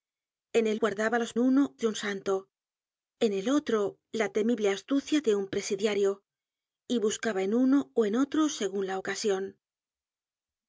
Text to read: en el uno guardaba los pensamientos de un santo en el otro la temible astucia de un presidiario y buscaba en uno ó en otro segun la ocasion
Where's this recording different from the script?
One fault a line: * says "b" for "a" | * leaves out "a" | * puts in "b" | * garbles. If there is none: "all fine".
* leaves out "uno"
* says "uno" for "pensamientos"